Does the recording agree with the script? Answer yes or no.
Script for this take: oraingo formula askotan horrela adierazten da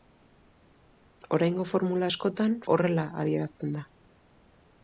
yes